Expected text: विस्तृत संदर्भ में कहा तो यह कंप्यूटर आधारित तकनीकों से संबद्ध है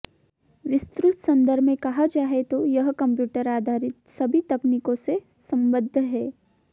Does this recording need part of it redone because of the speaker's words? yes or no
yes